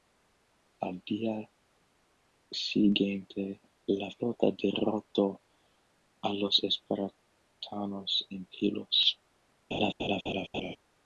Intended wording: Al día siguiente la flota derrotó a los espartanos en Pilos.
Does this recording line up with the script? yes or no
yes